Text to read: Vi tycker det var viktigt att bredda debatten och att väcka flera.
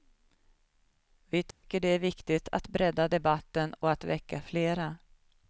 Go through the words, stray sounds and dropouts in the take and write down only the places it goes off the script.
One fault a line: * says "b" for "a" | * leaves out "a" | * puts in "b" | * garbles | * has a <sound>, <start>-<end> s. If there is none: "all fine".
* has a dropout, 1.5-1.6 s
* says "är" for "var"